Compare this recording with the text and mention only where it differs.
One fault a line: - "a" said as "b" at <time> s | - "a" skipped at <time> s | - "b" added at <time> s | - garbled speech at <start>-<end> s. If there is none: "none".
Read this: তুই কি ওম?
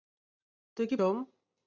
none